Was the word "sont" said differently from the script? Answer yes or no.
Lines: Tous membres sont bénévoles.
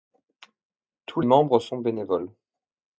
no